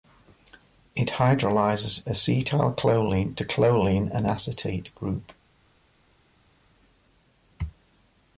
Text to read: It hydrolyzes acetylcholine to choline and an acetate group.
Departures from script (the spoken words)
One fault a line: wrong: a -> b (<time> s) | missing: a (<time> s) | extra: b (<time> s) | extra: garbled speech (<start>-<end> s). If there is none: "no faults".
missing: an (4.3 s)